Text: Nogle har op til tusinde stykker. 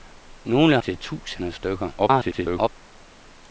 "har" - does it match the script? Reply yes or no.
no